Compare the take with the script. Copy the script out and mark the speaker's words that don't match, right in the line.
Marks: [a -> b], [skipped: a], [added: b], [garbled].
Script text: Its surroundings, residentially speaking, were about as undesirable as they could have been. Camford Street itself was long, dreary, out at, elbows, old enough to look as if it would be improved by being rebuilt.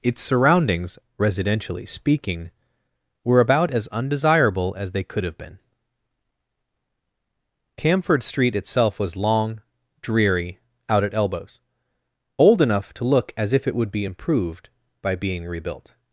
Its surroundings, residentially speaking, were about as undesirable as they could have been. Camford Street itself was long, dreary, out at, elbows, old enough to look as if it would be improved by being rebuilt.